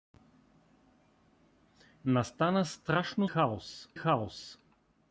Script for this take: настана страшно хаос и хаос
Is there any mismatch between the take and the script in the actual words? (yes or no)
no